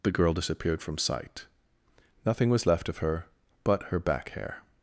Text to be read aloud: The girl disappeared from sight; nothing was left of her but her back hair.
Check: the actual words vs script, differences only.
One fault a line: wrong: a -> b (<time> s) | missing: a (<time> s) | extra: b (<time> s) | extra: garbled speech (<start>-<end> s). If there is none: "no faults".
no faults